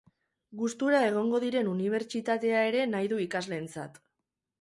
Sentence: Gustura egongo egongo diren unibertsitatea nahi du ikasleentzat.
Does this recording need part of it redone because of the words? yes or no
yes